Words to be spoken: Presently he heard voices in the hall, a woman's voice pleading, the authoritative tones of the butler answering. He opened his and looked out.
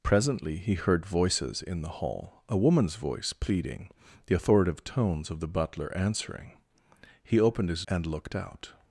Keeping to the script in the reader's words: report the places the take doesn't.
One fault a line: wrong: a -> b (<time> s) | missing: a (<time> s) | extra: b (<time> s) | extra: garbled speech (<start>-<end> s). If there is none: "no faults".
no faults